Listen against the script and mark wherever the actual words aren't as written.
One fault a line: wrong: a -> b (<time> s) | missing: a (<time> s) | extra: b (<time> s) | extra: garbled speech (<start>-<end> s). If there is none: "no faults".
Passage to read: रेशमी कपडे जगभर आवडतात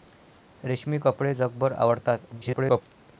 extra: garbled speech (2.3-2.8 s)